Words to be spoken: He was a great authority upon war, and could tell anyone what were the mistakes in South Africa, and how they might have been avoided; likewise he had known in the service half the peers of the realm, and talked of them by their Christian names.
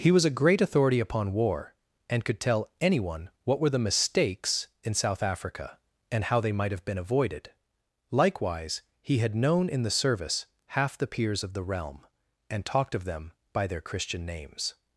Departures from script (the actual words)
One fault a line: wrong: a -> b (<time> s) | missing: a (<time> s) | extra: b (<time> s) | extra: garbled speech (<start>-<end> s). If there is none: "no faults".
no faults